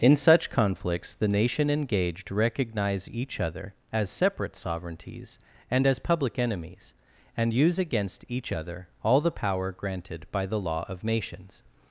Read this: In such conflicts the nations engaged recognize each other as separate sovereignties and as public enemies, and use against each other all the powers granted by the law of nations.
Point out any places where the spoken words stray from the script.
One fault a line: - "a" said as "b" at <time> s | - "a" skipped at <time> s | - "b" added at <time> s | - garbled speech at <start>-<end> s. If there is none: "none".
- "nations" said as "nation" at 1.3 s
- "powers" said as "power" at 9.3 s